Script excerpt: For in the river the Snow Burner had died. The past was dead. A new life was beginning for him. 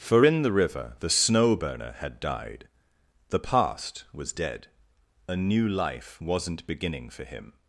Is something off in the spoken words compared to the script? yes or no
yes